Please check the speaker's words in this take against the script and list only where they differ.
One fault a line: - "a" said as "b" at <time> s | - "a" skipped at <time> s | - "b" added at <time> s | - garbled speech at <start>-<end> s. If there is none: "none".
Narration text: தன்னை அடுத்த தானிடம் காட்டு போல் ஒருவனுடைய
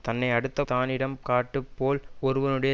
none